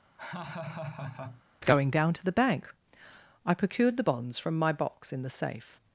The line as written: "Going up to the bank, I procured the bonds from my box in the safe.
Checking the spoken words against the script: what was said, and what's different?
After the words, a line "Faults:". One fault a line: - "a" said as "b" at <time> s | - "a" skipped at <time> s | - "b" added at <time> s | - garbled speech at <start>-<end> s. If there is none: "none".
"Going down to the bank, I procured the bonds from my box in the safe.
Faults:
- "up" said as "down" at 1.9 s